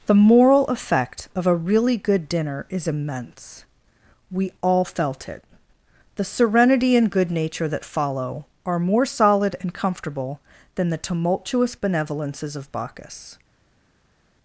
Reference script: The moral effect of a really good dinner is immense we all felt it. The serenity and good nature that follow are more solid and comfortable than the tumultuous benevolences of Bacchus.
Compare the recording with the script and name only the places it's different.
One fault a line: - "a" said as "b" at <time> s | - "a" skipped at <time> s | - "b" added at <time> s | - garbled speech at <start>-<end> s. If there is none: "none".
none